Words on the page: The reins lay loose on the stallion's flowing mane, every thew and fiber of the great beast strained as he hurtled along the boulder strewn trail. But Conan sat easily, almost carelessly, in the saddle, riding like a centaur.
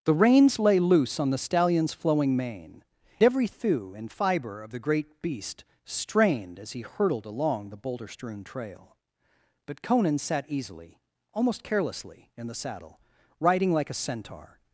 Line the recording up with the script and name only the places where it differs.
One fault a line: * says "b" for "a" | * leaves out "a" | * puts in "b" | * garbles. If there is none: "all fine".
all fine